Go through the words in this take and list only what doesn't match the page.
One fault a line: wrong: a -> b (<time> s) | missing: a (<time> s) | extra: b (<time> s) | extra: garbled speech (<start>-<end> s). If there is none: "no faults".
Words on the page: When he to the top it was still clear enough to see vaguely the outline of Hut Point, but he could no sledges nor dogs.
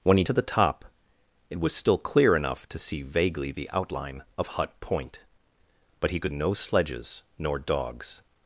no faults